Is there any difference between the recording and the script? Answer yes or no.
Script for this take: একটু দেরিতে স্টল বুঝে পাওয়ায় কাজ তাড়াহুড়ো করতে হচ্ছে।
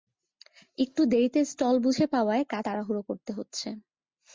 no